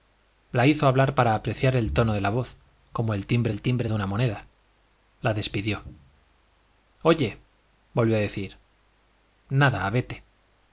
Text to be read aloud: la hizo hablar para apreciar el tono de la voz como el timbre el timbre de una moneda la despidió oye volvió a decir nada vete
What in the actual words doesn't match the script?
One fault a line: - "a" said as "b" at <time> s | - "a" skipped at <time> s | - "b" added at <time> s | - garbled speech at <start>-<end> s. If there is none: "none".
none